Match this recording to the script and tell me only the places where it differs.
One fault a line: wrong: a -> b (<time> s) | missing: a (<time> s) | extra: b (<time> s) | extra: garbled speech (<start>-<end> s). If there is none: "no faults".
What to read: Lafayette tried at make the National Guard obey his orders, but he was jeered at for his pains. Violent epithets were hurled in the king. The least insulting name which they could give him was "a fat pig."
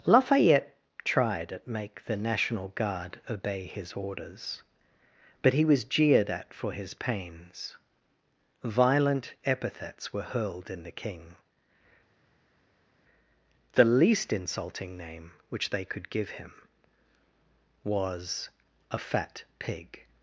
no faults